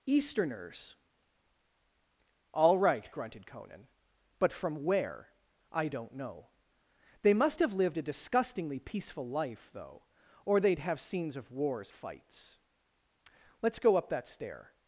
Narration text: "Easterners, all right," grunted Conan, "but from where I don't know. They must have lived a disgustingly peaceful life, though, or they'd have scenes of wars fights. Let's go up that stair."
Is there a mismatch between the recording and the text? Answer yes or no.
no